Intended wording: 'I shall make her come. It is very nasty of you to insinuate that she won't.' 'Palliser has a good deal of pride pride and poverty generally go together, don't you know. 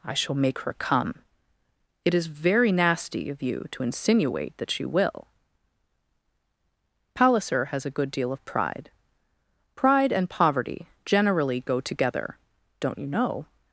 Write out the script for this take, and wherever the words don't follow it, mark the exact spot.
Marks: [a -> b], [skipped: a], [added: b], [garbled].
'I shall make her come. It is very nasty of you to insinuate that she [won't.' -> will] 'Palliser has a good deal of pride pride and poverty generally go together, don't you know.